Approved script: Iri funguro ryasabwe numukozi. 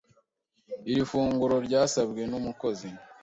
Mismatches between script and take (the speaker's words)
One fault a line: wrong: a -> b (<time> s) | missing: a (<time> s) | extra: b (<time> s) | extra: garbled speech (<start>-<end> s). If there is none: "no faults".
no faults